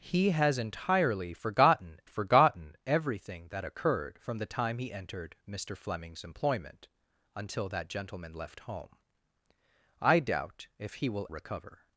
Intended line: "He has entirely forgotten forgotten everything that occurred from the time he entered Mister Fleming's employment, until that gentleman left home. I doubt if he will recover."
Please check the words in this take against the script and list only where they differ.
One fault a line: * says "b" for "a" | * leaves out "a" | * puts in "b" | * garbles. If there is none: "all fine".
all fine